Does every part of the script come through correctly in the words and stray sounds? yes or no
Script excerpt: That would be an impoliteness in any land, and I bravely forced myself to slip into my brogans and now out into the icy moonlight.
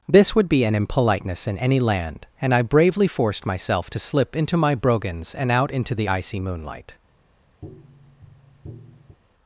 no